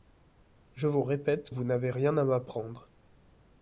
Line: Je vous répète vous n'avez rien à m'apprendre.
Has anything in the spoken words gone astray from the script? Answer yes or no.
no